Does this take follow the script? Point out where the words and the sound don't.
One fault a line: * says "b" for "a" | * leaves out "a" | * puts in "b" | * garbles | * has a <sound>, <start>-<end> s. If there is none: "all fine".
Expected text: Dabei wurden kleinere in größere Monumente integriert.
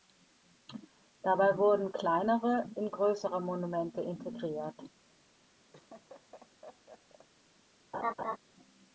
* has a laugh, 5.7-7.3 s
* has a laugh, 7.9-8.4 s